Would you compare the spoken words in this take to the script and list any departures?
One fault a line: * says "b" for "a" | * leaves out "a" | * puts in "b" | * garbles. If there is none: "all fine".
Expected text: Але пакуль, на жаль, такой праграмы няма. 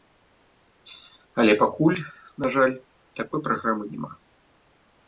all fine